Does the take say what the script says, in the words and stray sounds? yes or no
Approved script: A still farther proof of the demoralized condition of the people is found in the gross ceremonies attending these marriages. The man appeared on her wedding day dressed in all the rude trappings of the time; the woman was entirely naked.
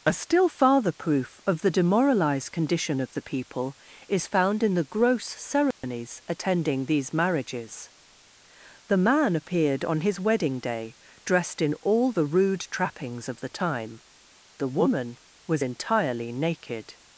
no